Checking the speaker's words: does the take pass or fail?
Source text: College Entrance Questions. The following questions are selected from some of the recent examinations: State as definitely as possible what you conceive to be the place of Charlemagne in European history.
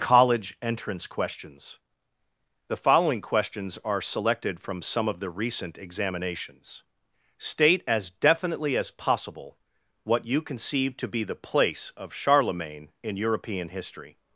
pass